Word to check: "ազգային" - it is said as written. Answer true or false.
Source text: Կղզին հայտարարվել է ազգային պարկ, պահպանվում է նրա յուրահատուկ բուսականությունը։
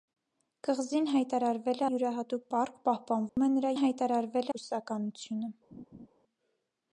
false